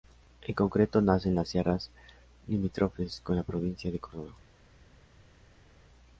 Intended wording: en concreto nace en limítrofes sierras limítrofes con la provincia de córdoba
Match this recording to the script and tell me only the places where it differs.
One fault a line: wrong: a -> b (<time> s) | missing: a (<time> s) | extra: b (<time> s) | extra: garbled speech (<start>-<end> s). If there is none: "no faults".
wrong: limítrofes -> las (1.4 s)